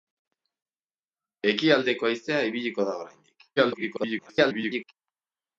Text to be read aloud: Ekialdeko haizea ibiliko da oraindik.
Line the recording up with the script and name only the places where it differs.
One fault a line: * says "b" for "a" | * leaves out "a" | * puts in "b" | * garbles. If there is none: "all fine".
* garbles